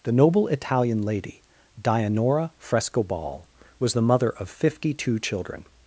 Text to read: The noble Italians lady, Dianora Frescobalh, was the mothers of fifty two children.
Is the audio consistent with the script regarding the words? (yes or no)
no